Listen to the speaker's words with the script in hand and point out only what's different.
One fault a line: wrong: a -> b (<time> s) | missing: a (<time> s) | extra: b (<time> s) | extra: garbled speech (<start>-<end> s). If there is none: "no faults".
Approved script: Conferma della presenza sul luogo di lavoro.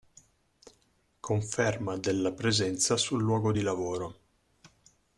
no faults